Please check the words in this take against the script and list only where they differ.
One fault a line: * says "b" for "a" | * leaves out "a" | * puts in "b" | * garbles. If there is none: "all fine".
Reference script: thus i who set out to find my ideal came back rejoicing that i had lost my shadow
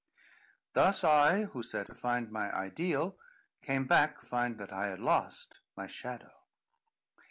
* leaves out "out"
* says "find" for "rejoicing"